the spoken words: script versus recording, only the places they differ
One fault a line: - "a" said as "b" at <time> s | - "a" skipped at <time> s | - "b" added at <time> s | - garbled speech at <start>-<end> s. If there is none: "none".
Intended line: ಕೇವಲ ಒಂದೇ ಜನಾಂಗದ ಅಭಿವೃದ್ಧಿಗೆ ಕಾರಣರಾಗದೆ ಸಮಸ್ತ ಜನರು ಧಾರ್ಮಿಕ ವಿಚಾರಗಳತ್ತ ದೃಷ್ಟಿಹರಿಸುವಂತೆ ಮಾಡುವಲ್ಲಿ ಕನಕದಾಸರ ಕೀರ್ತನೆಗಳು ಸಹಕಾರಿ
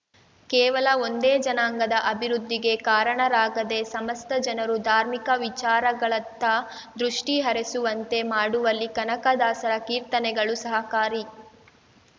none